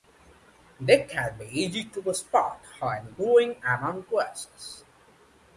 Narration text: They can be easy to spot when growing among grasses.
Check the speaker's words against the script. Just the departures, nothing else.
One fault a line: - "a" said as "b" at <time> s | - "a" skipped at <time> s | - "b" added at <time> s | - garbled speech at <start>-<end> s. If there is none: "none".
none